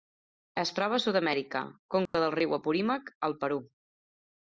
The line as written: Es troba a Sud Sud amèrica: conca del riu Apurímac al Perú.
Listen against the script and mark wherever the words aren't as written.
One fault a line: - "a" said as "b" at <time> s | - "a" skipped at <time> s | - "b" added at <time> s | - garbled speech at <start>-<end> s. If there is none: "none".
- "Sud" skipped at 1.2 s